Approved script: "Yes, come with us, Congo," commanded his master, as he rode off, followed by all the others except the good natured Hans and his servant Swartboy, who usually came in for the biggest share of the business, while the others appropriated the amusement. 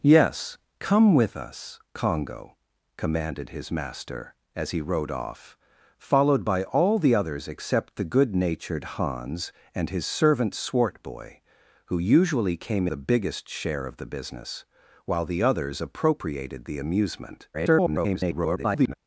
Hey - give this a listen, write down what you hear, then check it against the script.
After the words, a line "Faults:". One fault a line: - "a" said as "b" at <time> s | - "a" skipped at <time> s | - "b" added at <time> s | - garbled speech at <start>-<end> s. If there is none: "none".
"Yes, come with us, Congo," commanded his master, as he rode off, followed by all the others except the good natured Hans and his servant Swartboy, who usually came the biggest share of the business, while the others appropriated the amusement. [garbled]
Faults:
- "in for" skipped at 12.9 s
- garbled speech at 17.5-18.9 s